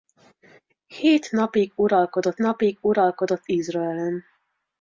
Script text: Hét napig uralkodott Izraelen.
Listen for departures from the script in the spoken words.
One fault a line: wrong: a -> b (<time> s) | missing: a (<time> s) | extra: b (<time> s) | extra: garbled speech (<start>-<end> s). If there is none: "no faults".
extra: napig uralkodott (2.4 s)